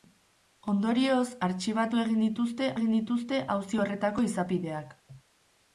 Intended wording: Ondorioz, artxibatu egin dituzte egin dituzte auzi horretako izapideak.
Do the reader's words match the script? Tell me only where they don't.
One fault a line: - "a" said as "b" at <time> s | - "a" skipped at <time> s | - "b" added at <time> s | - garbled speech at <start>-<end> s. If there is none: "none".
none